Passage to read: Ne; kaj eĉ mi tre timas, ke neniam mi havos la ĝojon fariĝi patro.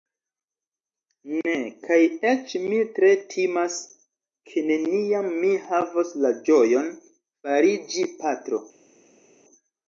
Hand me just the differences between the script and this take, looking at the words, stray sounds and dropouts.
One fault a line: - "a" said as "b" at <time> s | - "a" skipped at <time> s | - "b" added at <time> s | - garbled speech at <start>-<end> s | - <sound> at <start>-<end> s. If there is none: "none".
none